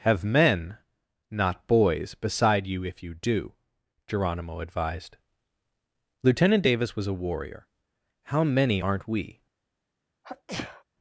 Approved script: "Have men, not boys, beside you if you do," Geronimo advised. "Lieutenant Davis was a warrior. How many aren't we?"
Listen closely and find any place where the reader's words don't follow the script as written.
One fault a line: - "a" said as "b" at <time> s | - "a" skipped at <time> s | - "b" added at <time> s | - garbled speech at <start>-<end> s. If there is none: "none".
none